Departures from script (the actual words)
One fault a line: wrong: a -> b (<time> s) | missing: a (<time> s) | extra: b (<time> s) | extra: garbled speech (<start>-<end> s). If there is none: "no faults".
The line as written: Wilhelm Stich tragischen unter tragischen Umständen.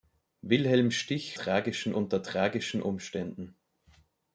no faults